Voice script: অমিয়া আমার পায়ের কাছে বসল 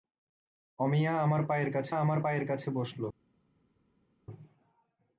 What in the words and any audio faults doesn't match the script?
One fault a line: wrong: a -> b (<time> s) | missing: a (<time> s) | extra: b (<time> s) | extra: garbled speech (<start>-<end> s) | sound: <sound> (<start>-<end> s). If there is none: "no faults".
extra: আমার পায়ের কাছে (2.0 s)